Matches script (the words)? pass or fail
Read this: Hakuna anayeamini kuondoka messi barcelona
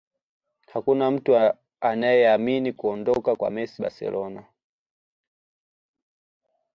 fail